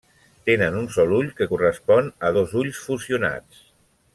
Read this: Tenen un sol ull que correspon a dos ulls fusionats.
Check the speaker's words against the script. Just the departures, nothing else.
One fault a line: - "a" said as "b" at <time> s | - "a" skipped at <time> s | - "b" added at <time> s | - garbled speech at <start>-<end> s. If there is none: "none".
none